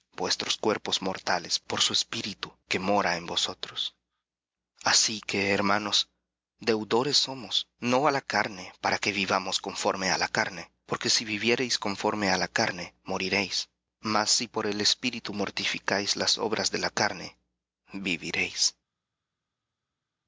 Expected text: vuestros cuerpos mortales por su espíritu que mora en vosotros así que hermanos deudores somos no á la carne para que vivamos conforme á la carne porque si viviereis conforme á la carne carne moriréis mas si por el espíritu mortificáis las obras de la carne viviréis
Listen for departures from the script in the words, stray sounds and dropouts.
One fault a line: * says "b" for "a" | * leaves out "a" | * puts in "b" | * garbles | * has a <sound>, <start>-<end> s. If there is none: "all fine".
* leaves out "carne"